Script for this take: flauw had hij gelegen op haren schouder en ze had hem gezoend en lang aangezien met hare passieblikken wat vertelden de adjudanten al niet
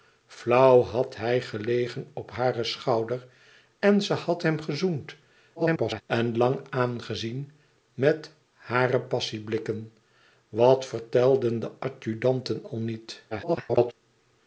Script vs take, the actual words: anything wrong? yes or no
yes